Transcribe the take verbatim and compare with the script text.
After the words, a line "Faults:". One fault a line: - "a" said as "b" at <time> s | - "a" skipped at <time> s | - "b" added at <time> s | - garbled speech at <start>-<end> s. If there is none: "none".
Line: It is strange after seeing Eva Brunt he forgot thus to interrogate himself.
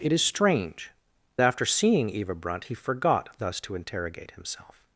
It is strange after seeing Eva Brunt he forgot thus to interrogate himself.
Faults:
none